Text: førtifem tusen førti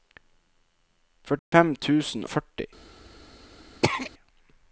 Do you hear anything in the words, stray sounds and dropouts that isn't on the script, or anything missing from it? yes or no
yes